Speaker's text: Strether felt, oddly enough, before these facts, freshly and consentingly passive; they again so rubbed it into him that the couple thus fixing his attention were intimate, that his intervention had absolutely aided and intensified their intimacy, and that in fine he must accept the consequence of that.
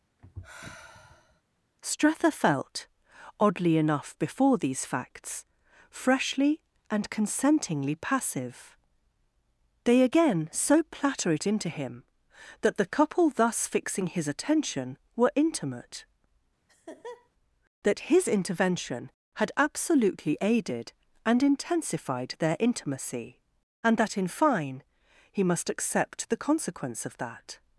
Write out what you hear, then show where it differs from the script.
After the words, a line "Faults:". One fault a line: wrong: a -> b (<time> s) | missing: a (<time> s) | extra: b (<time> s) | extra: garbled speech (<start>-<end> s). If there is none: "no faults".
Strether felt, oddly enough, before these facts, freshly and consentingly passive; they again so platter it into him that the couple thus fixing his attention were intimate, that his intervention had absolutely aided and intensified their intimacy, and that in fine he must accept the consequence of that.
Faults:
wrong: rubbed -> platter (10.8 s)